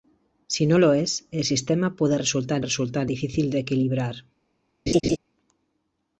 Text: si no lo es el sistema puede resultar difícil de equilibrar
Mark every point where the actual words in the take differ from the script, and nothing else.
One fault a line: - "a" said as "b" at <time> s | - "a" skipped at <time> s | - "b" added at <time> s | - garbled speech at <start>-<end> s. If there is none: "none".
- "resultar" added at 2.6 s